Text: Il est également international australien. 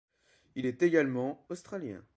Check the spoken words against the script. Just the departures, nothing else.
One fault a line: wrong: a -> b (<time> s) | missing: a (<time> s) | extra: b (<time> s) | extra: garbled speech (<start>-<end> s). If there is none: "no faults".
missing: international (1.4 s)